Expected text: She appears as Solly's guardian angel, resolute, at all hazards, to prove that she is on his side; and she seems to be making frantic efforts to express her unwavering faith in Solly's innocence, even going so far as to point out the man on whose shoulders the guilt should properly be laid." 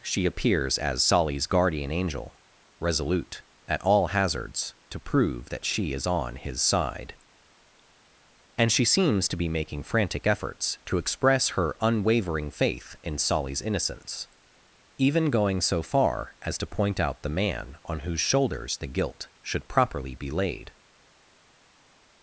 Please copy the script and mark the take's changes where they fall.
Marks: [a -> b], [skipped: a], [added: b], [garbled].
She appears as Solly's guardian angel, resolute, at all hazards, to prove that she is on his side; and she seems to be making frantic efforts to express her unwavering faith in Solly's innocence, even going so far as to point out the man on whose shoulders the guilt should properly be laid."